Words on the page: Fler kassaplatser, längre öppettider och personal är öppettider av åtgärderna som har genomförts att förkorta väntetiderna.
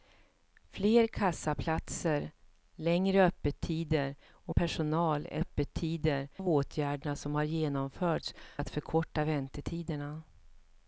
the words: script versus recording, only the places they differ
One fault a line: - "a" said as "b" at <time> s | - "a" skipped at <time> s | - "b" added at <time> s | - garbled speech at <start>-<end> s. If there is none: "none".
none